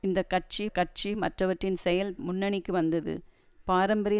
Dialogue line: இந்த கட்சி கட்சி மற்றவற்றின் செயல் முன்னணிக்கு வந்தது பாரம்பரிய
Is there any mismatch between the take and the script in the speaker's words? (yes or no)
no